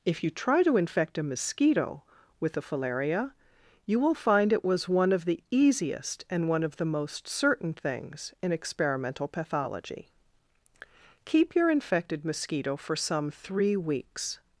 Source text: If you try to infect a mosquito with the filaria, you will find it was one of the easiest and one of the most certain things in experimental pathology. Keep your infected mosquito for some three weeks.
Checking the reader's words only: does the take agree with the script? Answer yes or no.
yes